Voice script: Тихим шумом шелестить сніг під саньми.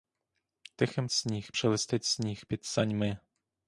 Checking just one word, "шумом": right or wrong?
wrong